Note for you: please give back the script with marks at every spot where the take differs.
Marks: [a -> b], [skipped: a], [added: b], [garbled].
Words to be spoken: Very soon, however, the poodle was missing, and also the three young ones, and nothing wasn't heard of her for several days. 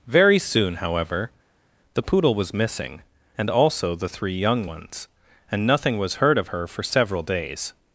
Very soon, however, the poodle was missing, and also the three young ones, and nothing [wasn't -> was] heard of her for several days.